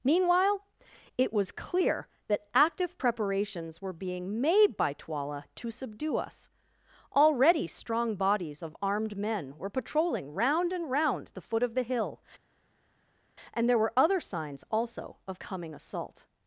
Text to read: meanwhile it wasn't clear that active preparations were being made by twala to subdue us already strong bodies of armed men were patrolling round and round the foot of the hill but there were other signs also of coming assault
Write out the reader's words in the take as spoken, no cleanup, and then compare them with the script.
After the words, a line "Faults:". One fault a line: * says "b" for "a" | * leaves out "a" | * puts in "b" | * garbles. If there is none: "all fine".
meanwhile it was clear that active preparations were being made by twala to subdue us already strong bodies of armed men were patrolling round and round the foot of the hill and there were other signs also of coming assault
Faults:
* says "was" for "wasn't"
* says "and" for "but"